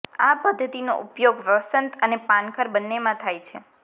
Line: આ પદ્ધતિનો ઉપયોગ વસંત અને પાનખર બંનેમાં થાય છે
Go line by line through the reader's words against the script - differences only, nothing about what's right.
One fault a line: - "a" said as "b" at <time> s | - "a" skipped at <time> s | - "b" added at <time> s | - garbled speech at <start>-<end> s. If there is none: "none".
none